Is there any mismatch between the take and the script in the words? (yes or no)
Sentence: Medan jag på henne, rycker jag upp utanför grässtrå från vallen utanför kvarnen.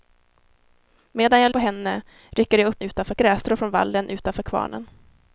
no